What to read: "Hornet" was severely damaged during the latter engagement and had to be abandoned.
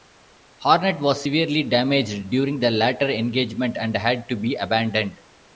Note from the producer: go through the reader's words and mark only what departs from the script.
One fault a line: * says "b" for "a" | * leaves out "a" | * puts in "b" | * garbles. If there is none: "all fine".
all fine